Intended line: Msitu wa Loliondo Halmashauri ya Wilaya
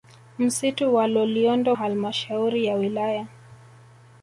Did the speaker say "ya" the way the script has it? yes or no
yes